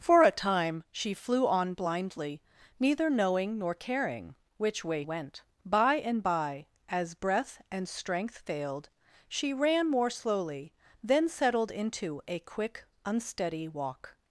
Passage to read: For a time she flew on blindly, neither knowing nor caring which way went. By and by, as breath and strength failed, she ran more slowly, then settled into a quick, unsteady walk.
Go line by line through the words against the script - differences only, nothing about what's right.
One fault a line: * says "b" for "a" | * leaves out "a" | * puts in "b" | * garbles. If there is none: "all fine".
all fine